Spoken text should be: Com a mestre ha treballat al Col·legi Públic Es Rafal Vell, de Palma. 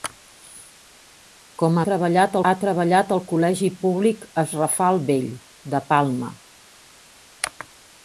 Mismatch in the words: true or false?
true